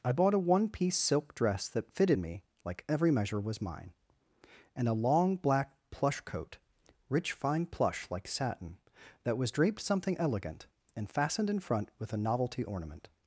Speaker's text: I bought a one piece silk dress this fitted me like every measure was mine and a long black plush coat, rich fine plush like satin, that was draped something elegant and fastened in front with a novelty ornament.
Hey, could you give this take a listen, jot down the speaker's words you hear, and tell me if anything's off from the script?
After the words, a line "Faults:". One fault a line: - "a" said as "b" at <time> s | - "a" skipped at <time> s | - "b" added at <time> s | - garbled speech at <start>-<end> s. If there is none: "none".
I bought a one piece silk dress that fitted me like every measure was mine and a long black plush coat, rich fine plush like satin, that was draped something elegant and fastened in front with a novelty ornament.
Faults:
- "this" said as "that" at 1.7 s